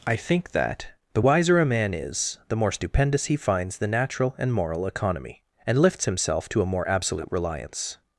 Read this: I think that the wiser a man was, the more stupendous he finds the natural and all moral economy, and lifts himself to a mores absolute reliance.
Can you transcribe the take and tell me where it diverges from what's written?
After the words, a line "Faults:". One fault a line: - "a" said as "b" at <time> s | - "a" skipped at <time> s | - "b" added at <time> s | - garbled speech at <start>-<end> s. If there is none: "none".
I think that the wiser a man is, the more stupendous he finds the natural and moral economy, and lifts himself to a more absolute reliance.
Faults:
- "was" said as "is" at 1.9 s
- "all" skipped at 4.5 s
- "mores" said as "more" at 6.7 s